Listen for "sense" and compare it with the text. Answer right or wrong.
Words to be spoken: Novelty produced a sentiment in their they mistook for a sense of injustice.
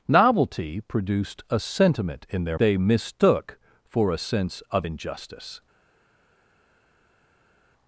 right